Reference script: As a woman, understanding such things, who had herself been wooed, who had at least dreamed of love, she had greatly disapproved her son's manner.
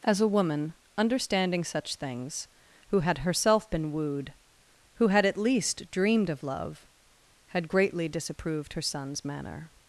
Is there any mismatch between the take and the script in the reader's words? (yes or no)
yes